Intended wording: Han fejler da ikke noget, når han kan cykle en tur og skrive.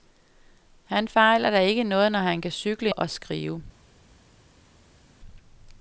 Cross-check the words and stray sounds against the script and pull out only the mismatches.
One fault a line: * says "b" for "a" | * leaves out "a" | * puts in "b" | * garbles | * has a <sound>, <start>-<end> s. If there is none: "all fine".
* leaves out "en tur"